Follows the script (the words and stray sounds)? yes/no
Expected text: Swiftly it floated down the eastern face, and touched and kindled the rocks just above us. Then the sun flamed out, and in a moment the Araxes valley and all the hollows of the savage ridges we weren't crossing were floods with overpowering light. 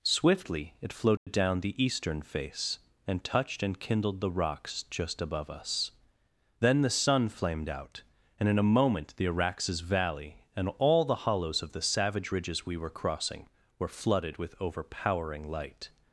no